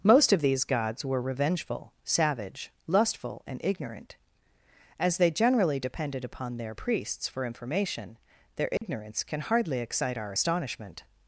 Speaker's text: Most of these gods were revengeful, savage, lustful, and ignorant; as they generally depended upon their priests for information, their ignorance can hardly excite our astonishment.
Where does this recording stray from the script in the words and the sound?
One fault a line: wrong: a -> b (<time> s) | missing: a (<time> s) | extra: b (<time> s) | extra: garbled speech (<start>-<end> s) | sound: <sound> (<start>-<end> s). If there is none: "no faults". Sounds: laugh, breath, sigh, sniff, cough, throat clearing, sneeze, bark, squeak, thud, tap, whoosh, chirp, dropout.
sound: dropout (8.8-8.8 s)